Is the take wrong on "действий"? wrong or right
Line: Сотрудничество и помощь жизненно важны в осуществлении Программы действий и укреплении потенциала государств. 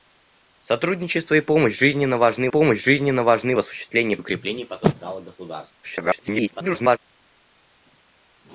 wrong